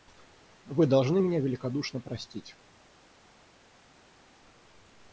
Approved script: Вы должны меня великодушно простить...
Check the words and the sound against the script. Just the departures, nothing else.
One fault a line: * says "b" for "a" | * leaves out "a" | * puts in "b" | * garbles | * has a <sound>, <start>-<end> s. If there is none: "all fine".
all fine